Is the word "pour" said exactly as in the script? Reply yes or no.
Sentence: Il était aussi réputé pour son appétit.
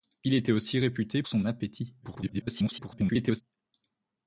no